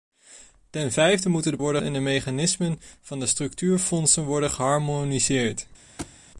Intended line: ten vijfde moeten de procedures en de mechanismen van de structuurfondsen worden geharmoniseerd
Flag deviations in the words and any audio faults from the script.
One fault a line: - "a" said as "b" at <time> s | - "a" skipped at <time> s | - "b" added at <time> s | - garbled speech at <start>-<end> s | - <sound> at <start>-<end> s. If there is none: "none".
- "procedures" said as "worden" at 1.6 s
- thud at 6.0-6.2 s